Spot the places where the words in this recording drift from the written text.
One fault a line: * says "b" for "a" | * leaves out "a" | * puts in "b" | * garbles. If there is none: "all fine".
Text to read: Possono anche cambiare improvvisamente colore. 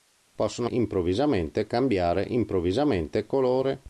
* says "improvvisamente" for "anche"